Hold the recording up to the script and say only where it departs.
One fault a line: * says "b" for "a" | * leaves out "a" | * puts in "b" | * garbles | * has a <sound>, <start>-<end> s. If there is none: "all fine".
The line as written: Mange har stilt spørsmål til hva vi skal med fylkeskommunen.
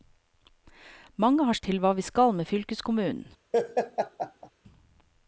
* leaves out "stilt spørsmål"
* has a laugh, 3.5-4.5 s